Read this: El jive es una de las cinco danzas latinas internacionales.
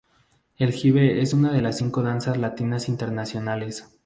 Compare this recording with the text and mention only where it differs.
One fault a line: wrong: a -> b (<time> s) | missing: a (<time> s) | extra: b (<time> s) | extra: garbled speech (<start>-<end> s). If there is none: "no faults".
no faults